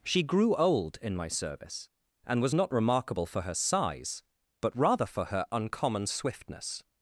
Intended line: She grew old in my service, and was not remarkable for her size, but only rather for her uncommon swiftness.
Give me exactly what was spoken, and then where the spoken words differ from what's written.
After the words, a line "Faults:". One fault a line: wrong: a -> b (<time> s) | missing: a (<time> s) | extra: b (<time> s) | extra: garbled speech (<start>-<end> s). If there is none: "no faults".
She grew old in my service, and was not remarkable for her size, but rather for her uncommon swiftness.
Faults:
missing: only (4.8 s)